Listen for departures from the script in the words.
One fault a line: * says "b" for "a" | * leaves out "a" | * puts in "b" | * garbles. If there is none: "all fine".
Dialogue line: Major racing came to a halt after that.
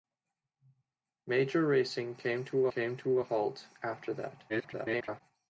* puts in "came to"
* garbles